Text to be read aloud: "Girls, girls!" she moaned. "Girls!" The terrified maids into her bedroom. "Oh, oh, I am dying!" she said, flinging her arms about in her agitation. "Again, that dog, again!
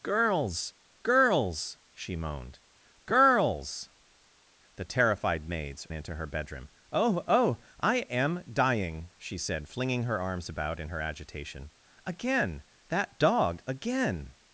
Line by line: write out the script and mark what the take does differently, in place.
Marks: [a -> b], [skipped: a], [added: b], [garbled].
"Girls, girls!" she moaned. "Girls!" The terrified maids into her bedroom. "Oh, oh, I am dying!" she said, flinging her arms about in her agitation. "Again, that dog, again!